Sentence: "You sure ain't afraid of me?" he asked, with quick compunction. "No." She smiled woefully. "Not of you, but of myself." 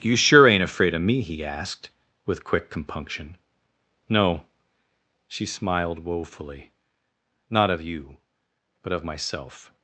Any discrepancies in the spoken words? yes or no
no